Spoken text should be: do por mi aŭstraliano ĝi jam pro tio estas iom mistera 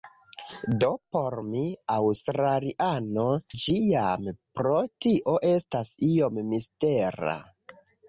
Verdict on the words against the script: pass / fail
pass